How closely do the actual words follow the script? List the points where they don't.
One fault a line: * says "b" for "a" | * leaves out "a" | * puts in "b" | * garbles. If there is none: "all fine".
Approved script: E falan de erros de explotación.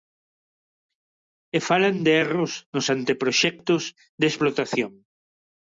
* puts in "nos anteproxectos"